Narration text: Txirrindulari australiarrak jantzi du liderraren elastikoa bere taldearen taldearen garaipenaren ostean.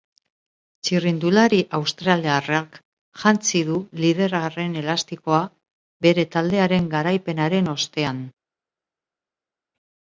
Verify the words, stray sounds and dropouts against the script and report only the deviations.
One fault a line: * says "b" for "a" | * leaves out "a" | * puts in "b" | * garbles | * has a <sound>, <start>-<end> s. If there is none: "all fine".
* leaves out "taldearen"